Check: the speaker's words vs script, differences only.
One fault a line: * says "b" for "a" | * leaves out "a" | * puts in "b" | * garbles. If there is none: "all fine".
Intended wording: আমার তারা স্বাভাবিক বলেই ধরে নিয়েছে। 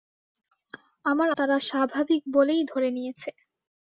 all fine